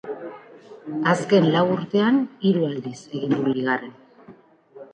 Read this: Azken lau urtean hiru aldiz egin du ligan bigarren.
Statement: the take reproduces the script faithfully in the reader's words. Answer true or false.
false